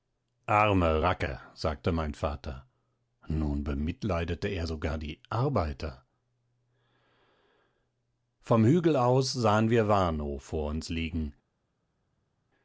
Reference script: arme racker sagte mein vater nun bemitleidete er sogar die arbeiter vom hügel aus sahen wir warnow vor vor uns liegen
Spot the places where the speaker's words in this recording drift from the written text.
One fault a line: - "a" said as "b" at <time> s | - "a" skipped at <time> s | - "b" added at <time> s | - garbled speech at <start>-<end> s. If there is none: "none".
- "vor" skipped at 10.7 s